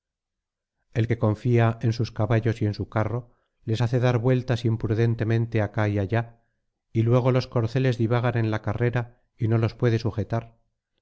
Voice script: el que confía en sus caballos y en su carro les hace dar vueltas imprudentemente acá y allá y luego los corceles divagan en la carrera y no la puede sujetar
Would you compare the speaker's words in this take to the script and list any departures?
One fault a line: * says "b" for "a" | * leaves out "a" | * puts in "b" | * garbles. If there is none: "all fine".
* says "los" for "la"